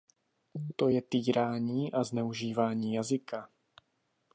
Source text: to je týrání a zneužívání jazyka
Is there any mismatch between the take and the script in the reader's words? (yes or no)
no